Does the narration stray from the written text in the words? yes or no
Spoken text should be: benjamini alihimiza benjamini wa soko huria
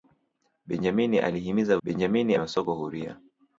no